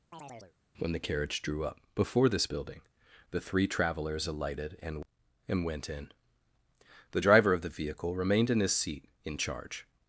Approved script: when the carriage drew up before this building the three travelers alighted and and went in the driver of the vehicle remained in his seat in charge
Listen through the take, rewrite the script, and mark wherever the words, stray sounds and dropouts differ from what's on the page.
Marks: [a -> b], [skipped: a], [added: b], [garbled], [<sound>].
[chirp] when the carriage drew up before this building the three travelers alighted and and went in the driver of the vehicle remained in his seat in charge